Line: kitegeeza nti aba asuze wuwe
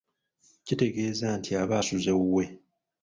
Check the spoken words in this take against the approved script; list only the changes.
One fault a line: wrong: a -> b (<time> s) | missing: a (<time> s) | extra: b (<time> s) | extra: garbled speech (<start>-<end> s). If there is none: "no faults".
no faults